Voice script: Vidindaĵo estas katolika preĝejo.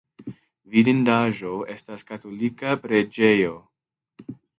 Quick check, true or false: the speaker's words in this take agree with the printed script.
true